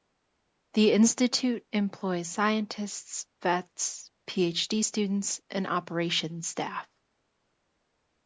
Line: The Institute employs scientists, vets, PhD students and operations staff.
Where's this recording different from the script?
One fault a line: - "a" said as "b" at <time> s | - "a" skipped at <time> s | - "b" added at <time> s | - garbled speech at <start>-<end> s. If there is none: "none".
none